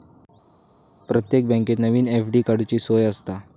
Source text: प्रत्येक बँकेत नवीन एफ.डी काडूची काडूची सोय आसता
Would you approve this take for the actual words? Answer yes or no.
no